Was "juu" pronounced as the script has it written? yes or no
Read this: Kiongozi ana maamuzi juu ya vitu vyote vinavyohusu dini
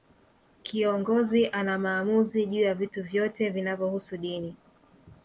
yes